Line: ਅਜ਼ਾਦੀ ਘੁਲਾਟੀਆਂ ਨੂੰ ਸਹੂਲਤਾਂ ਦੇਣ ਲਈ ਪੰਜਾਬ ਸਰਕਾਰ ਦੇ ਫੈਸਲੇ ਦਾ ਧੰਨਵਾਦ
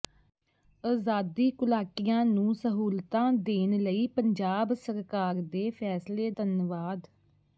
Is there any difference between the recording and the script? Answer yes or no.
yes